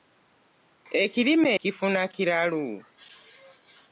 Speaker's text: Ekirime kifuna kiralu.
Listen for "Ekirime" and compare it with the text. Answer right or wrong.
right